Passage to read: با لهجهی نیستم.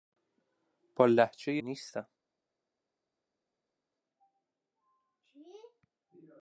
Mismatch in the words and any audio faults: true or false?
false